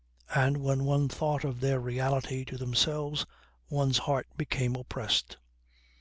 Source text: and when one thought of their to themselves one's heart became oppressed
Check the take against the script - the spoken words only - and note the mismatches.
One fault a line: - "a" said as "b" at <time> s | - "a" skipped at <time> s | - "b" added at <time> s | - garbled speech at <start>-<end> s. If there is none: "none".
- "reality" added at 1.8 s